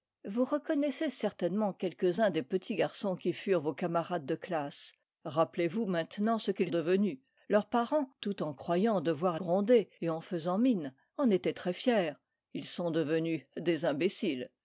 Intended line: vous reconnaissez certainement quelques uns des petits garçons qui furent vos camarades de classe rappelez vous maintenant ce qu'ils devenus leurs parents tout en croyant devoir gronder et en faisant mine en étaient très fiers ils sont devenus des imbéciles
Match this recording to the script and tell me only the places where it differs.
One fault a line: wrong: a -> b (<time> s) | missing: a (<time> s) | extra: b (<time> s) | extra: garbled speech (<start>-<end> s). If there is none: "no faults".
no faults